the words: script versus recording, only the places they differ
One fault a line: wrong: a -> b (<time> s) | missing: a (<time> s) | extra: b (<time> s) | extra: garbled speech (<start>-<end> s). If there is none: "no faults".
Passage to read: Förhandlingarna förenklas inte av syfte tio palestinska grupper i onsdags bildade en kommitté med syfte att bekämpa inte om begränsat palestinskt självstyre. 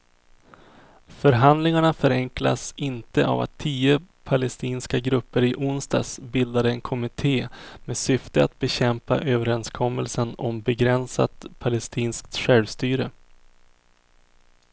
wrong: syfte -> att (3.4 s)
wrong: inte -> överenskommelsen (9.2 s)